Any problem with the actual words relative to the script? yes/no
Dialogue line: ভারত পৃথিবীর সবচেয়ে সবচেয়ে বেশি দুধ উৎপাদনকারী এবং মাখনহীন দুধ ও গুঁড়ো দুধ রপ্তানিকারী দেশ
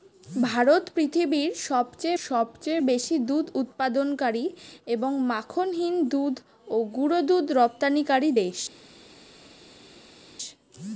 no